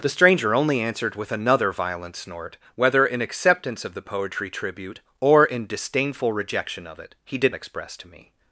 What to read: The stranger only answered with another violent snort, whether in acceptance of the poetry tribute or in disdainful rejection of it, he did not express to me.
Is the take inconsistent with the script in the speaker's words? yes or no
yes